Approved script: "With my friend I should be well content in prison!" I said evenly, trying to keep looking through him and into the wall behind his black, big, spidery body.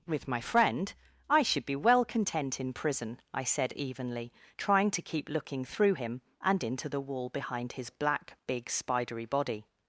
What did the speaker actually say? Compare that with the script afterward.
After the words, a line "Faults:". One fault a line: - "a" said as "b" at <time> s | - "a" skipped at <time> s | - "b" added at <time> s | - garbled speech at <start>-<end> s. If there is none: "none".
"With my friend I should be well content in prison!" I said evenly, trying to keep looking through him and into the wall behind his black, big, spidery body.
Faults:
none